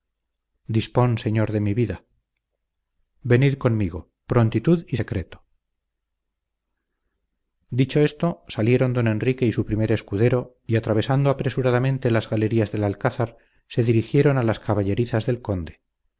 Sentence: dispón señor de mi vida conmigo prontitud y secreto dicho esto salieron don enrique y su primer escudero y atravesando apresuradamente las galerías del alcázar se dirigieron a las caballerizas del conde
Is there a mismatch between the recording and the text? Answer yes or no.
yes